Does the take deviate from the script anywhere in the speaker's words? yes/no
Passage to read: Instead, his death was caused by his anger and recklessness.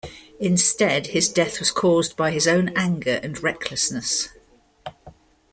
yes